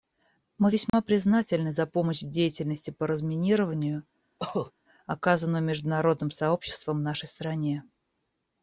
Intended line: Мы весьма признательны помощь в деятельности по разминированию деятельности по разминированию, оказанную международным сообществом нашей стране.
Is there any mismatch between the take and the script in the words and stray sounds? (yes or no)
yes